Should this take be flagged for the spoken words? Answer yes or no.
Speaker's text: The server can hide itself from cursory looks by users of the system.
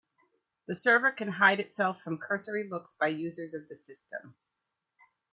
no